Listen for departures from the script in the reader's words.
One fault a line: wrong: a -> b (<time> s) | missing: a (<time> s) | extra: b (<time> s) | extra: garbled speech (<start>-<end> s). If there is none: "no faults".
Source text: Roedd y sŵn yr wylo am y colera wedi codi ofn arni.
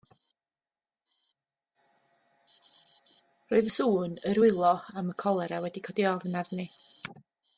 no faults